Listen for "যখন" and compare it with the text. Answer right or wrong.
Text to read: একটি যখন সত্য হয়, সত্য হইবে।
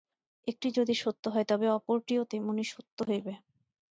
wrong